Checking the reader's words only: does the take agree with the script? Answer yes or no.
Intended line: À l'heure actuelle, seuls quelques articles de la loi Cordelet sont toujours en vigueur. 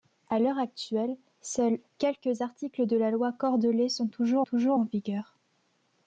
no